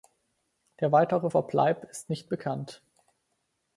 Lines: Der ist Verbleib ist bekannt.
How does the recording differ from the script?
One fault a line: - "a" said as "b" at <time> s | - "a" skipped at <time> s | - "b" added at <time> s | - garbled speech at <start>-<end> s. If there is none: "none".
- "ist" said as "weitere" at 0.9 s
- "nicht" added at 2.1 s